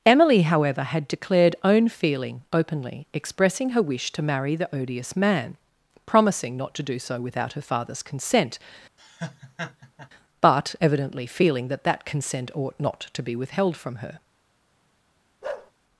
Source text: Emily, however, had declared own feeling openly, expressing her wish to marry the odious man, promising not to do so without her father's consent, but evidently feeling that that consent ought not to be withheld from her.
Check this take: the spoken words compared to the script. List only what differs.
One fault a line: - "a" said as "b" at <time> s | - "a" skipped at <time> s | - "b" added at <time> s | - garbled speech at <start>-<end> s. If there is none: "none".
none